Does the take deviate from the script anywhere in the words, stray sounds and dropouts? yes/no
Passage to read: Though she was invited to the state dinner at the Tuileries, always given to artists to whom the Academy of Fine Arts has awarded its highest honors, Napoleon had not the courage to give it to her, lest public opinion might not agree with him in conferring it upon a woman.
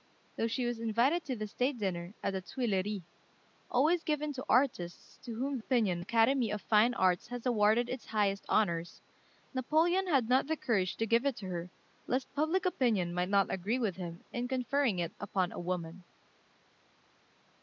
yes